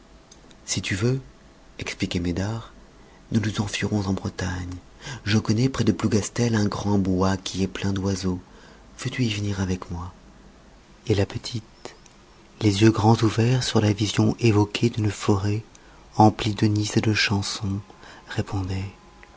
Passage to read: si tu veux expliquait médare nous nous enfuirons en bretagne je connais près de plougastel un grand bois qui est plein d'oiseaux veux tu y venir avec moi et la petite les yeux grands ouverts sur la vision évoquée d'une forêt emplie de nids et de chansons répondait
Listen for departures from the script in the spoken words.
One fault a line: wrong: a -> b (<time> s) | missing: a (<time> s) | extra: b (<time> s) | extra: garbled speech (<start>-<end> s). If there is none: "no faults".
no faults